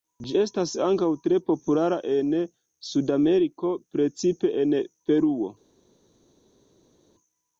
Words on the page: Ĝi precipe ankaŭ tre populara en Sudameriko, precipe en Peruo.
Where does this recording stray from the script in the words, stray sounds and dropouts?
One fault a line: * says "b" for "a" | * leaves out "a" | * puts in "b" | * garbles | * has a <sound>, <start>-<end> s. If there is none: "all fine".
* says "estas" for "precipe"